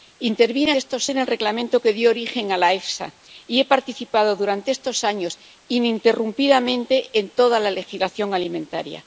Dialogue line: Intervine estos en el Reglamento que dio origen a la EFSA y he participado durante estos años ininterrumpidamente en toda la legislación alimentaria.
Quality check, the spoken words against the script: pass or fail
pass